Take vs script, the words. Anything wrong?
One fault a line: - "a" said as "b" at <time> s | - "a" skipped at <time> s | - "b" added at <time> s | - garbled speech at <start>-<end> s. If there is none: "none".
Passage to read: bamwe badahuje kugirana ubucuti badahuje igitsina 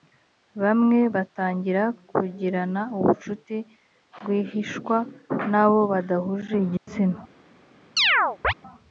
- "badahuje" said as "batangira" at 1.1 s
- "rwihishwa n'abo" added at 4.2 s